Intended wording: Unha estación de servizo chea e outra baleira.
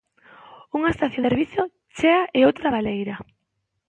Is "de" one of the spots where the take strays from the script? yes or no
yes